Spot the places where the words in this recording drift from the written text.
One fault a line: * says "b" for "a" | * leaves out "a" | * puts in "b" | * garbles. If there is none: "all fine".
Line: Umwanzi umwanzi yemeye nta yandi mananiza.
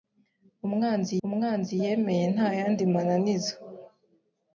all fine